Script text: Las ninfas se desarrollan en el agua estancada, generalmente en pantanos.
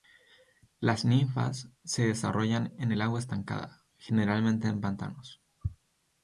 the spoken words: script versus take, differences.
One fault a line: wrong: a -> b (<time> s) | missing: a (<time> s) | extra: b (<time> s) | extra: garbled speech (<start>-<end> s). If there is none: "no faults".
no faults